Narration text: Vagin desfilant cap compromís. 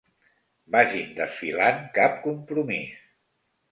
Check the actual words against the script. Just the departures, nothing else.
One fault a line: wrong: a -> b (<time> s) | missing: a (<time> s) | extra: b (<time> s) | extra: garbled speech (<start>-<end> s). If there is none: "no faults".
no faults